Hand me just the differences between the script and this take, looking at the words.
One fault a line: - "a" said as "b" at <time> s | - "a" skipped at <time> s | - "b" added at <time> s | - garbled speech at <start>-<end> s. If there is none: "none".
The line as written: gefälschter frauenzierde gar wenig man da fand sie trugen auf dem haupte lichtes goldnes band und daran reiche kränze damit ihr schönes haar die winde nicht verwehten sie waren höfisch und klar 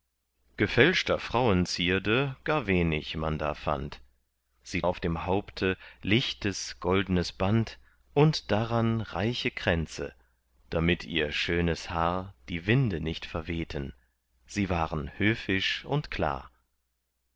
- "trugen" skipped at 4.8 s